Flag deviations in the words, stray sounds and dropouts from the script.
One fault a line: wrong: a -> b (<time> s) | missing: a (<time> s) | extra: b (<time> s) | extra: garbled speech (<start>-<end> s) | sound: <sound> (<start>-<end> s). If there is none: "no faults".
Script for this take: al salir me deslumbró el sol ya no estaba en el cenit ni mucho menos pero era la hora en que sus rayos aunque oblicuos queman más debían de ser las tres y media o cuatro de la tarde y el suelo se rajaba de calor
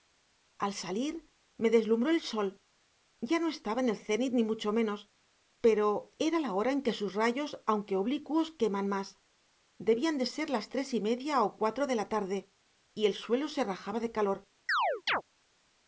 sound: chirp (14.7-15.2 s)